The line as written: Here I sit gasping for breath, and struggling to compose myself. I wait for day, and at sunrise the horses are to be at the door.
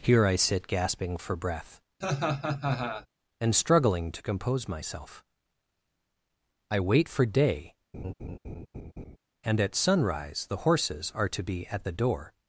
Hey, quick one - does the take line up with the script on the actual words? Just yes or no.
yes